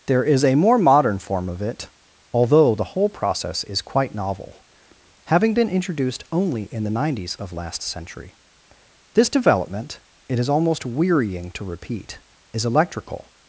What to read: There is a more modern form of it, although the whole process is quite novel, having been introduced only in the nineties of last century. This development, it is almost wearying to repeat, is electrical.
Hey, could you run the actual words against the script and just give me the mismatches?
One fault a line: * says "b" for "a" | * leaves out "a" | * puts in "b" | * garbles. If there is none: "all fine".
all fine